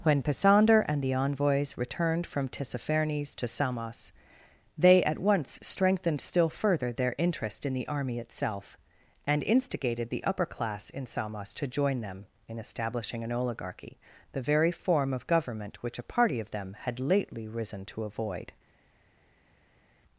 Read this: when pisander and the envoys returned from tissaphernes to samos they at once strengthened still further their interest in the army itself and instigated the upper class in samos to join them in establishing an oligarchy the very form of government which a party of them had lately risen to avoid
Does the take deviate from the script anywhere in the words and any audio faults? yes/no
no